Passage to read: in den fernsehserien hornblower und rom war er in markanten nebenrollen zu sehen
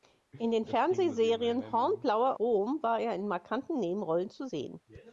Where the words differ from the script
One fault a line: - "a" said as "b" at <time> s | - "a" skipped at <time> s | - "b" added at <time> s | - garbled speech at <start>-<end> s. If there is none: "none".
- "und" skipped at 2.4 s